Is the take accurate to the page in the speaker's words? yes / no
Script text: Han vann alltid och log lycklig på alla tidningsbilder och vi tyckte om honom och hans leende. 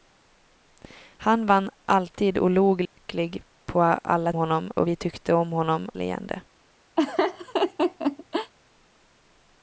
no